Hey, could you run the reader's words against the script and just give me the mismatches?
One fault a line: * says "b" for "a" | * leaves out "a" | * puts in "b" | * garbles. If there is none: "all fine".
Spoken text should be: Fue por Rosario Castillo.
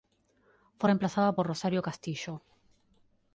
* puts in "reemplazada"